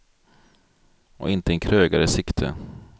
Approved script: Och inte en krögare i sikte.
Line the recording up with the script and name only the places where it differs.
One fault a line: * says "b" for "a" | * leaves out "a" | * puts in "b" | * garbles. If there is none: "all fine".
all fine